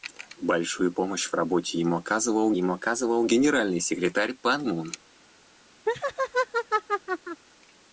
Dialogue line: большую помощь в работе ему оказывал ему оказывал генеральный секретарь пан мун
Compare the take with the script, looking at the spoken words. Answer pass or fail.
pass